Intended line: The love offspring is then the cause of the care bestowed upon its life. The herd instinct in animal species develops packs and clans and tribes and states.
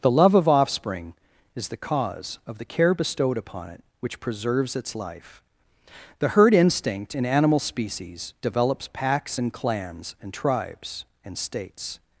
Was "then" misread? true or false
true